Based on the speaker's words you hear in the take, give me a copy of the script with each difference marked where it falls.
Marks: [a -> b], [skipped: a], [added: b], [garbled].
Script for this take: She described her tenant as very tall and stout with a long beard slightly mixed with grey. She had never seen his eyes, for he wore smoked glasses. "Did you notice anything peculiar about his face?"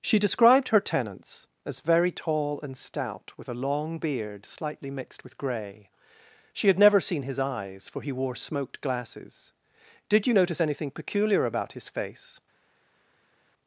She described her [tenant -> tenants] as very tall and stout with a long beard slightly mixed with grey. She had never seen his eyes, for he wore smoked glasses. "Did you notice anything peculiar about his face?"